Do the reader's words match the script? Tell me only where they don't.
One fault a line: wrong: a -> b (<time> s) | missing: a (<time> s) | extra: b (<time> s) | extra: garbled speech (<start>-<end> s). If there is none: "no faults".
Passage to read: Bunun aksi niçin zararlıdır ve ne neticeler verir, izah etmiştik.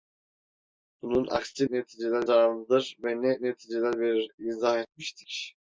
wrong: niçin -> neticeler (1.7 s)